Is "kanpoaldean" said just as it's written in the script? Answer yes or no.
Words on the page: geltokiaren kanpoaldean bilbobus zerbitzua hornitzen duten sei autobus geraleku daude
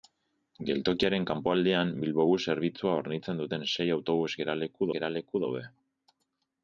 yes